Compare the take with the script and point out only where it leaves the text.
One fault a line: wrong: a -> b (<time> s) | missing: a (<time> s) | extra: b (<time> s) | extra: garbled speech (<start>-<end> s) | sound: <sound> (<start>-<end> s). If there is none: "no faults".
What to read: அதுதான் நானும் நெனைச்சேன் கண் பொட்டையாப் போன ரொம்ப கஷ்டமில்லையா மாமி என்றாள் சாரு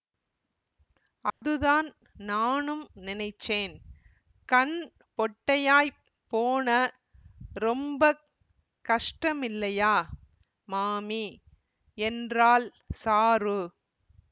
sound: dropout (1.3-1.4 s)